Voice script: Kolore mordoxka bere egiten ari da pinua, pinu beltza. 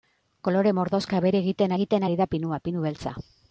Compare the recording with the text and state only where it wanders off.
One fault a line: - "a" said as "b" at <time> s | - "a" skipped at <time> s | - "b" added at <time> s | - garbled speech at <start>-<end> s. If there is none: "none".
- "egiten" added at 1.8 s